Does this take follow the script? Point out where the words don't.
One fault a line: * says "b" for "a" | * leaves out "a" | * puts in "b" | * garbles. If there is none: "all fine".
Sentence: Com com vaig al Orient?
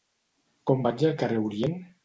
* leaves out "com"
* puts in "carrer"